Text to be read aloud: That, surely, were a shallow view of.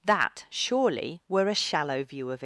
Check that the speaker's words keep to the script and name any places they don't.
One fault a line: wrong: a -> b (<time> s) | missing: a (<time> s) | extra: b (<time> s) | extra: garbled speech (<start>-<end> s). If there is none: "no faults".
no faults